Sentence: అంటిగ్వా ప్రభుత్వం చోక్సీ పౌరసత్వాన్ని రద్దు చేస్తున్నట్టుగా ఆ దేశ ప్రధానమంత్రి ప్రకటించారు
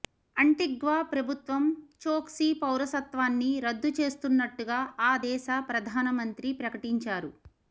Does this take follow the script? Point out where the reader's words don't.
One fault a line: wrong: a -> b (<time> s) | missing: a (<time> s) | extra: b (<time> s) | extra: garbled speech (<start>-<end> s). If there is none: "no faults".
no faults